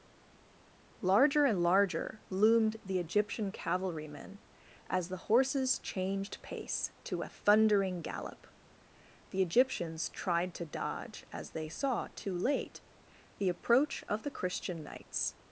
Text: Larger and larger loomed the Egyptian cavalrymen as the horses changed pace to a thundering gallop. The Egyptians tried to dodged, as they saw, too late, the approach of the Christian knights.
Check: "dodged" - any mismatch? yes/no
yes